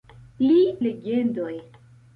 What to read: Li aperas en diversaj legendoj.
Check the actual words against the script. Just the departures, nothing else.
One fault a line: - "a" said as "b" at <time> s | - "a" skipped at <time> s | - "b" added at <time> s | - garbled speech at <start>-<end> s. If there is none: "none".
- "aperas en diversaj" skipped at 0.6 s